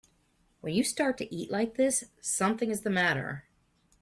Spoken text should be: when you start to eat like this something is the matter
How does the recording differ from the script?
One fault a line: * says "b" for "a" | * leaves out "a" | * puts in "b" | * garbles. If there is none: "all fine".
all fine